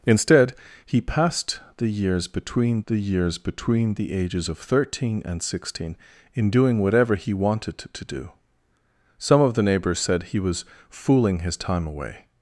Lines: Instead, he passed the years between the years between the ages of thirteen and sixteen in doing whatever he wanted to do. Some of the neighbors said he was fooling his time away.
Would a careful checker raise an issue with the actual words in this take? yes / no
no